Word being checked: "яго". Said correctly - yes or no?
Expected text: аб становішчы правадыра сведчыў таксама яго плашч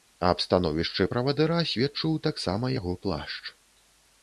yes